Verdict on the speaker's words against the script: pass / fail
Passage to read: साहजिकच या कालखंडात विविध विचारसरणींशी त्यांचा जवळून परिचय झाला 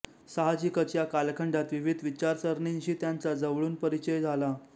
pass